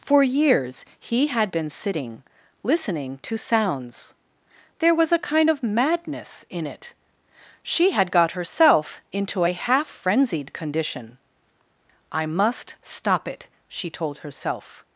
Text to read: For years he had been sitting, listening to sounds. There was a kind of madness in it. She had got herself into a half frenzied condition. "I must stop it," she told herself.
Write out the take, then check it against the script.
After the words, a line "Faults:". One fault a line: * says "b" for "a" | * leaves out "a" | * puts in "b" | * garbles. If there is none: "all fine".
For years he had been sitting, listening to sounds. There was a kind of madness in it. She had got herself into a half frenzied condition. "I must stop it," she told herself.
Faults:
all fine